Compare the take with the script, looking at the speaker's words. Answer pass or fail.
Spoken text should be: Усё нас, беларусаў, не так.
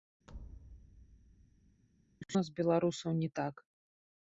pass